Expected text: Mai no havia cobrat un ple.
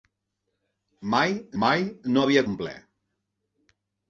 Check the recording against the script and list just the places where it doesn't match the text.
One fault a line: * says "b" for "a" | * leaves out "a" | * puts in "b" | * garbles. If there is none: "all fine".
* puts in "mai"
* leaves out "cobrat"